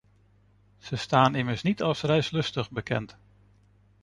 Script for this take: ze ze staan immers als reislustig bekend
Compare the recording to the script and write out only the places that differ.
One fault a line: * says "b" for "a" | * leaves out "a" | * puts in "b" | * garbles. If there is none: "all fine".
* leaves out "ze"
* puts in "niet"